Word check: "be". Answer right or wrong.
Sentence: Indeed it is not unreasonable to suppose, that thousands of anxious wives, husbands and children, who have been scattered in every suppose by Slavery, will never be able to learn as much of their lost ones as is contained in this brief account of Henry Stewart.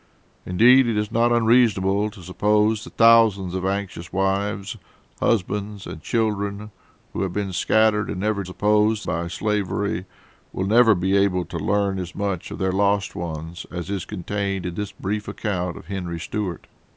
right